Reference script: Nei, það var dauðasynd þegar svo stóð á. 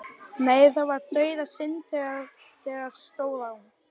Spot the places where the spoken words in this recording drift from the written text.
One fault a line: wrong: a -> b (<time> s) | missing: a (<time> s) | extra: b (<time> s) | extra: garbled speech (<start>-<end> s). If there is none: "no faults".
missing: svo (3.0 s)